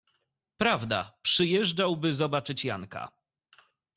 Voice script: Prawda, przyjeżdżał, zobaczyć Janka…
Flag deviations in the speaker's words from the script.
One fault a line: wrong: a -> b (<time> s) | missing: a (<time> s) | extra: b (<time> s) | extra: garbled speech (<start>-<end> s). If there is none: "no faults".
extra: by (2.0 s)